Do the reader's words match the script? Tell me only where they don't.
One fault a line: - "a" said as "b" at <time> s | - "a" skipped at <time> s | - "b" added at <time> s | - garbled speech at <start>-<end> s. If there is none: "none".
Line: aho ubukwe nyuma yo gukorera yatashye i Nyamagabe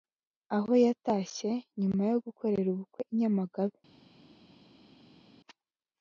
- "ubukwe" said as "yatashye" at 0.8 s
- "yatashye" said as "ubukwe" at 2.7 s